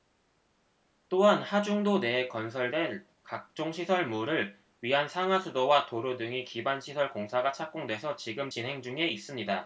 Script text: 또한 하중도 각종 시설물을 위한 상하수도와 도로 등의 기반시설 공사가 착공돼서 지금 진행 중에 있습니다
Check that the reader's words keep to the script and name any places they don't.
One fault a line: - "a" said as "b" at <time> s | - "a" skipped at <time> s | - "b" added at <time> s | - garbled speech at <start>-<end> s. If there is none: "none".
- "내에 건설될" added at 2.0 s